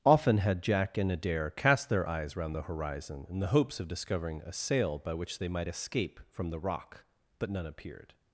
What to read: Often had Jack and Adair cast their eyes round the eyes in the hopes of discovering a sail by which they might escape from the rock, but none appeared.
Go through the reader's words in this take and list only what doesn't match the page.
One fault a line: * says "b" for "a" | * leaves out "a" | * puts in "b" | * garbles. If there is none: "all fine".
* says "horizon" for "eyes"